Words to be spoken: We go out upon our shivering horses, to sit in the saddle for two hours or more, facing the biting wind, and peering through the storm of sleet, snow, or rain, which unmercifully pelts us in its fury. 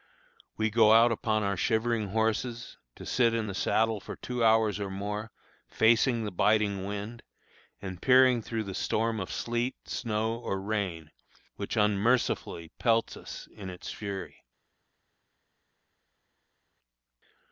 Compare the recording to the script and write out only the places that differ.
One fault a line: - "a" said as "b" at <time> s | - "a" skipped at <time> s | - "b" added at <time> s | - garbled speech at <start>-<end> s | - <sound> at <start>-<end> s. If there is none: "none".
none